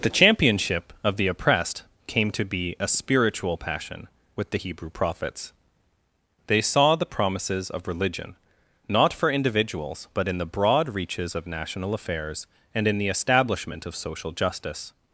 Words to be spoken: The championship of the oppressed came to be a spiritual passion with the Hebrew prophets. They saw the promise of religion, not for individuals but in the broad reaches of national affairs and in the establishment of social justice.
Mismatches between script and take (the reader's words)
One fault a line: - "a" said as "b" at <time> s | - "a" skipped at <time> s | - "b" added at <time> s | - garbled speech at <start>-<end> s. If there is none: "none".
- "promise" said as "promises" at 7.1 s